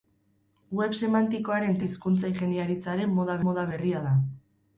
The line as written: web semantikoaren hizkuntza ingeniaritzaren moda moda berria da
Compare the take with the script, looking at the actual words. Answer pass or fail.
pass